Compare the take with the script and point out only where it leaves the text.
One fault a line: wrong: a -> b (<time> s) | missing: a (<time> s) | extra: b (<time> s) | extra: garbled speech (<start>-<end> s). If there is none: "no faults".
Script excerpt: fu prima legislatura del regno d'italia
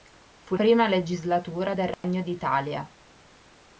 no faults